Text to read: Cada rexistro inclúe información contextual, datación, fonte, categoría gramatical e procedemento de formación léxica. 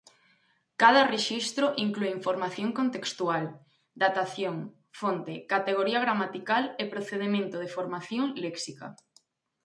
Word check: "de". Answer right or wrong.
right